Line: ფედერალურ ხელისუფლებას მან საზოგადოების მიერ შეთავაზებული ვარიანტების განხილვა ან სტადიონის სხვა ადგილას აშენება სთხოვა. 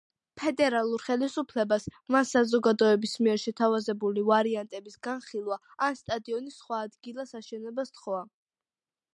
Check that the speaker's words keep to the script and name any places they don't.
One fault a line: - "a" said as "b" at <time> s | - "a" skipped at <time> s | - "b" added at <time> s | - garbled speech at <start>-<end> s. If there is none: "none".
none